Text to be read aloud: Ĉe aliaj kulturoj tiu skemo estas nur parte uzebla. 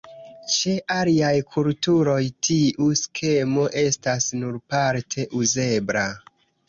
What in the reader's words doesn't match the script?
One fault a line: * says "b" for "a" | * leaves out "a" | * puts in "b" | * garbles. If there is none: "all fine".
all fine